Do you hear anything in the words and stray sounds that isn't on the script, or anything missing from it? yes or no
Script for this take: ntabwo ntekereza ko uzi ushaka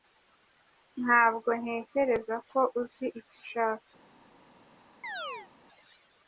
yes